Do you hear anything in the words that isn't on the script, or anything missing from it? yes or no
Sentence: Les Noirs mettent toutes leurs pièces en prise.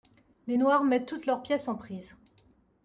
no